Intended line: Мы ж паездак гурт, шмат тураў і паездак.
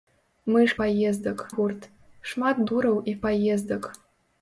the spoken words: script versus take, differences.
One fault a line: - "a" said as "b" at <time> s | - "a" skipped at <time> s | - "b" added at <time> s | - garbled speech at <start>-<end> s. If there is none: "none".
none